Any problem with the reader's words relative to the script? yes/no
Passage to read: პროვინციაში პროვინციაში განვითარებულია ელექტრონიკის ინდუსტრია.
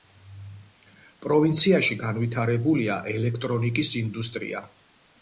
yes